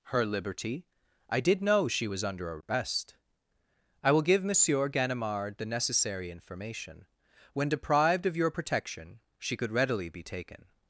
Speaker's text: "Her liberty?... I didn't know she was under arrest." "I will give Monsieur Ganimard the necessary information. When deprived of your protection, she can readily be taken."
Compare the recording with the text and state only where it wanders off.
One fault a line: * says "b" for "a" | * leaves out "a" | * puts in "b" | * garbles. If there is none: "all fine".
* says "did" for "didn't"
* says "could" for "can"